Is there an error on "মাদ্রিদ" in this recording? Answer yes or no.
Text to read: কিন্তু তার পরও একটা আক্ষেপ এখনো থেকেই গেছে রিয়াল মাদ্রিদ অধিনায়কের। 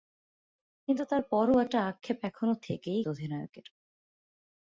yes